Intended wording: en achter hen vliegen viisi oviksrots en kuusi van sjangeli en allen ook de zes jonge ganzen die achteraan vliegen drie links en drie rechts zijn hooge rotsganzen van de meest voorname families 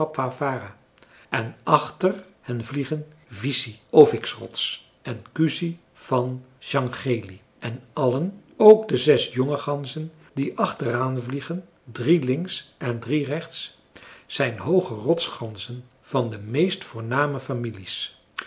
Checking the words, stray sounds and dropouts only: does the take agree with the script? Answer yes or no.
yes